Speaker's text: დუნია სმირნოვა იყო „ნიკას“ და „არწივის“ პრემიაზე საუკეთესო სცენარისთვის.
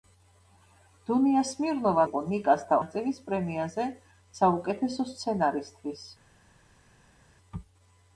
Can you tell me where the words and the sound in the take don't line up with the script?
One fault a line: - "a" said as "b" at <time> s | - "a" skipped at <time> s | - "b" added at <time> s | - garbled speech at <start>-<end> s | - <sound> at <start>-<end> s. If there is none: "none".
none